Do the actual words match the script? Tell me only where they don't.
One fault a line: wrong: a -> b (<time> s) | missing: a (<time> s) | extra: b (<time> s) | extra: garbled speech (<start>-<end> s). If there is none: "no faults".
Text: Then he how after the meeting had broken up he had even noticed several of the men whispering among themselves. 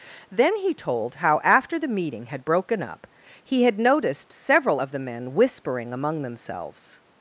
extra: told (0.7 s)
missing: even (3.8 s)